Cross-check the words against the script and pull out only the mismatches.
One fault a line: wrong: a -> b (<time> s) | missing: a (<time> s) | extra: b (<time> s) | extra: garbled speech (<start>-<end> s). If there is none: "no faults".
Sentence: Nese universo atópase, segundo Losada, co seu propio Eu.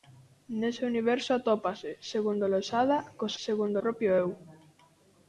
wrong: seu -> segundo (3.4 s)